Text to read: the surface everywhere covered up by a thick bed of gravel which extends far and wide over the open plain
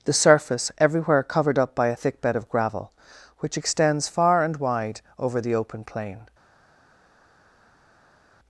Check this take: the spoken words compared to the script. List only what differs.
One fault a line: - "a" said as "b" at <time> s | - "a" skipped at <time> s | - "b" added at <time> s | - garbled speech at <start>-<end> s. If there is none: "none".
none